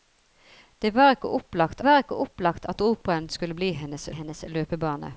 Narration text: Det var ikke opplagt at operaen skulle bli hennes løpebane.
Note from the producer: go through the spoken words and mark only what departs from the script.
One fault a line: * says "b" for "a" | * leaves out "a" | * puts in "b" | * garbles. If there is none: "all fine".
* puts in "var ikke opplagt"
* puts in "hennes"